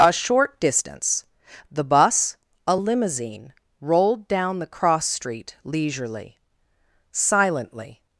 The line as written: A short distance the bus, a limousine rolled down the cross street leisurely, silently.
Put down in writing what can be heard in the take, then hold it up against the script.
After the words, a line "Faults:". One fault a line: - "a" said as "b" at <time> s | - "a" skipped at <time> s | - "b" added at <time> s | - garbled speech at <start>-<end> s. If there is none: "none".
A short distance the bus, a limousine rolled down the cross street leisurely, silently.
Faults:
none